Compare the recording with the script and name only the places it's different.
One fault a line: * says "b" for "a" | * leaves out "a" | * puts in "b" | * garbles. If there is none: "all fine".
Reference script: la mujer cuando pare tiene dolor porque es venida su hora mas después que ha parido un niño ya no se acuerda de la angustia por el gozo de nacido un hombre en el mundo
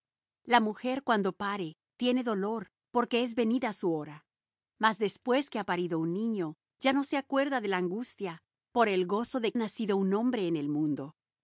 all fine